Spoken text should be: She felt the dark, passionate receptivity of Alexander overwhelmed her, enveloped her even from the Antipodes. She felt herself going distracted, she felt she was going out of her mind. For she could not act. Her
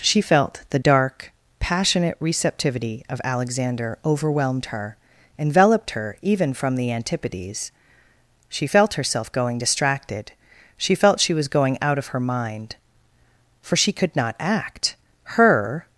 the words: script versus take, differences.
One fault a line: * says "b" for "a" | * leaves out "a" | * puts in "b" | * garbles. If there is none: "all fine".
all fine